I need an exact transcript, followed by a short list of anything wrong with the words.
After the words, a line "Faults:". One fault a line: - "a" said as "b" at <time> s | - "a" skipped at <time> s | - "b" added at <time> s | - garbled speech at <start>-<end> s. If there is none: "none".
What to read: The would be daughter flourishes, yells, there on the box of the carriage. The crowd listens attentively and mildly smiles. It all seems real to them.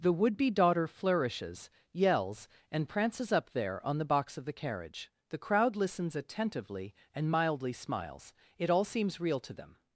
The would be daughter flourishes, yells, and prances up there on the box of the carriage. The crowd listens attentively and mildly smiles. It all seems real to them.
Faults:
- "and prances up" added at 2.7 s